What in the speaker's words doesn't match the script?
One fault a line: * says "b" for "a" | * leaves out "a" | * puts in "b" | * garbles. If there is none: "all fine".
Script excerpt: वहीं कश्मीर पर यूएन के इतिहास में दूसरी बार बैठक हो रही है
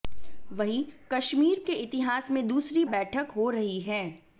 * leaves out "पर यूएन"
* leaves out "बार"